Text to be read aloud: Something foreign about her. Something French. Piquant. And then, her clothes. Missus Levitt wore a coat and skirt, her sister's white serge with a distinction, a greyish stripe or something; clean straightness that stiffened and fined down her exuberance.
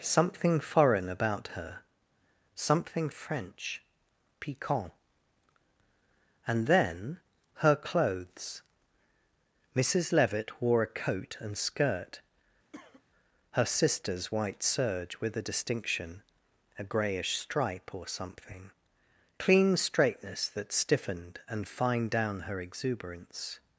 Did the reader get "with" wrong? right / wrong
right